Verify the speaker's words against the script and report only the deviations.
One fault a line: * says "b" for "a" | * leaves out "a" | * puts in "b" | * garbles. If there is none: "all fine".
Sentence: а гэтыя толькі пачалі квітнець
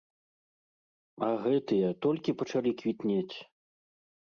all fine